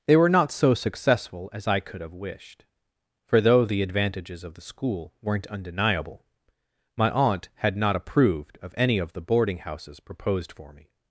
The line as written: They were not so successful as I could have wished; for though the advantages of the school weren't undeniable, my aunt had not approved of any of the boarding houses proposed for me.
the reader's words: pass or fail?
pass